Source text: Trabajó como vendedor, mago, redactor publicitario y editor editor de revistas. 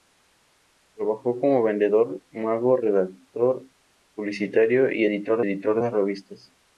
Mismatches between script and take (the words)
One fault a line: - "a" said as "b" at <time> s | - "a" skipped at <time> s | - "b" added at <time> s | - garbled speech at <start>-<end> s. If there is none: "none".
none